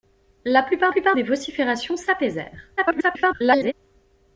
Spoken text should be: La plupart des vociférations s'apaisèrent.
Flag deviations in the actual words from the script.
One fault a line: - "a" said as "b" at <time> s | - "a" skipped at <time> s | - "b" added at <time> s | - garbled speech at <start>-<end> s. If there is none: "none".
- "plupart" added at 0.9 s
- garbled speech at 2.8-3.7 s